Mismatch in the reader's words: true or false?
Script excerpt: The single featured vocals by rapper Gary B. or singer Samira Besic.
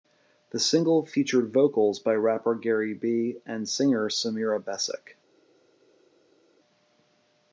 true